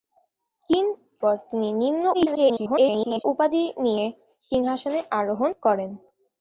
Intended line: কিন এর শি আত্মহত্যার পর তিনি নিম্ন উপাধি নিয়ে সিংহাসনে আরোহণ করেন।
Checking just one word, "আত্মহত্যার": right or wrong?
wrong